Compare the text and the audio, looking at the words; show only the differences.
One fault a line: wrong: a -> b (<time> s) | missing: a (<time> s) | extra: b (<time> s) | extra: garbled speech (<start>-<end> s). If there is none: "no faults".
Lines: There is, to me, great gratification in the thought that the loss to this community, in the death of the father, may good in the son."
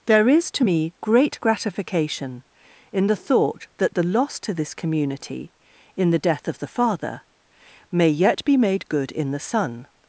extra: yet be made (8.1 s)